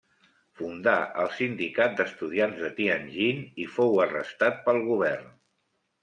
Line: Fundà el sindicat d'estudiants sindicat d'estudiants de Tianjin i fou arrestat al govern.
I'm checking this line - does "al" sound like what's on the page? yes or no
no